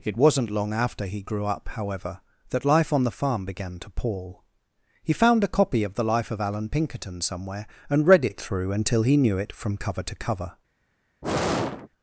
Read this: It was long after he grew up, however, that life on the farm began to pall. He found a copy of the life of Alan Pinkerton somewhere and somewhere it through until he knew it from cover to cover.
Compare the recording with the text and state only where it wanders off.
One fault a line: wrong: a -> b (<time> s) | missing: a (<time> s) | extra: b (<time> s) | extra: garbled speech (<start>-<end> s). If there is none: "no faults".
wrong: was -> wasn't (0.2 s)
wrong: somewhere -> read (8.1 s)